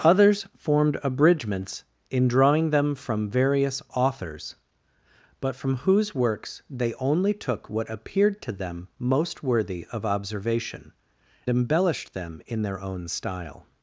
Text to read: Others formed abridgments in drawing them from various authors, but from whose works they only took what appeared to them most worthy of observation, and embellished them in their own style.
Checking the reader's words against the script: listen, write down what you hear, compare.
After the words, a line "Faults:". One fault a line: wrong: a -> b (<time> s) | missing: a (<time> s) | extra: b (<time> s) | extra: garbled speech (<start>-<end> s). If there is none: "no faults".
Others formed abridgments in drawing them from various authors, but from whose works they only took what appeared to them most worthy of observation, embellished them in their own style.
Faults:
missing: and (10.9 s)